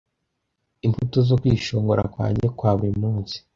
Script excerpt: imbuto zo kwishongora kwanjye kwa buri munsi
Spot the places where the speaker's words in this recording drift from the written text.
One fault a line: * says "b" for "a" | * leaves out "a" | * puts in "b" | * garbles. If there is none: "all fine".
all fine